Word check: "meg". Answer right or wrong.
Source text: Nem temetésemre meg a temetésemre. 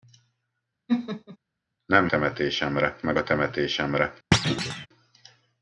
right